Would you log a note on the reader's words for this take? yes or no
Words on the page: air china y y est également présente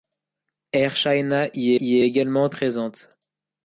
no